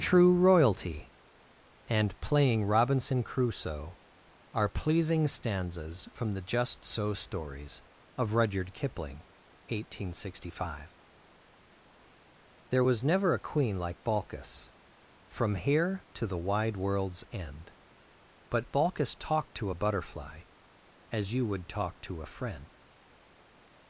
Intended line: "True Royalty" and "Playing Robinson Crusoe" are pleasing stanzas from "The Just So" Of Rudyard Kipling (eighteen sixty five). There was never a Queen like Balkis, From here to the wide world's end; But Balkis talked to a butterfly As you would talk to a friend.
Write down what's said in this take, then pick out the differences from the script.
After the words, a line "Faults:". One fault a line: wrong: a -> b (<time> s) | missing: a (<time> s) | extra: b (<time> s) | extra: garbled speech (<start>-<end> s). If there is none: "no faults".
"True Royalty" and "Playing Robinson Crusoe" are pleasing stanzas from "The Just So Stories" of Rudyard Kipling (eighteen sixty five). There was never a Queen like Balkis, From here to the wide world's end; But Balkis talked to a butterfly As you would talk to a friend.
Faults:
extra: Stories (7.1 s)